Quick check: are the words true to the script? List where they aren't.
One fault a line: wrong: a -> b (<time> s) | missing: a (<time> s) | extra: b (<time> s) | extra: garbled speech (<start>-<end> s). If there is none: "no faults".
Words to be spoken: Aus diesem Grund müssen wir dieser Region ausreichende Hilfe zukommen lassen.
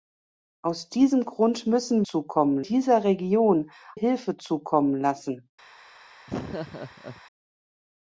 wrong: wir -> zukommen (2.0 s)
missing: ausreichende (3.7 s)